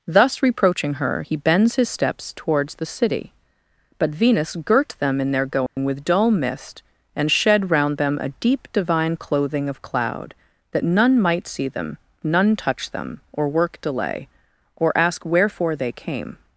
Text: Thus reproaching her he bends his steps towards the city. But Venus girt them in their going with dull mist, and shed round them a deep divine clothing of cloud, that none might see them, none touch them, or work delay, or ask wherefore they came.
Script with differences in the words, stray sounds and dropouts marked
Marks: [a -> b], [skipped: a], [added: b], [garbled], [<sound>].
Thus reproaching her he bends his steps towards the city. But Venus girt them in their going [dropout] with dull mist, and shed round them a deep divine clothing of cloud, that none might see them, none touch them, or work delay, or ask wherefore they came.